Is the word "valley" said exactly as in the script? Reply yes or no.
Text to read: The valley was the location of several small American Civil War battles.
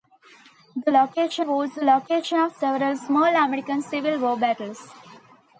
no